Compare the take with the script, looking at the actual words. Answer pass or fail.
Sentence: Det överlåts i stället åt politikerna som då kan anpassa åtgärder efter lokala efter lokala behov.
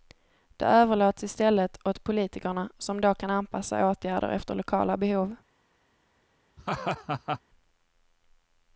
fail